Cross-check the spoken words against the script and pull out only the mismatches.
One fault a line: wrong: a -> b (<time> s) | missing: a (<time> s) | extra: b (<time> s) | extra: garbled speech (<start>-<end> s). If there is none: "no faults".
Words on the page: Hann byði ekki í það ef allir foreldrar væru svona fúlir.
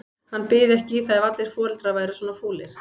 no faults